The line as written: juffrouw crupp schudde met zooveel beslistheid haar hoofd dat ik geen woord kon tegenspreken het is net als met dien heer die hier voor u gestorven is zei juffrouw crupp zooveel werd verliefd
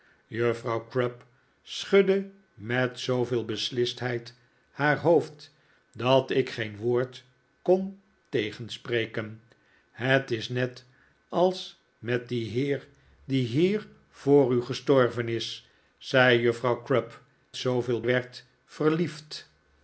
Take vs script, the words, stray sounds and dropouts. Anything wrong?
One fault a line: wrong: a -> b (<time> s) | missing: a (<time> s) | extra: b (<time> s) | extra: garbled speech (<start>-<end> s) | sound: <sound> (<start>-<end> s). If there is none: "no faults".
no faults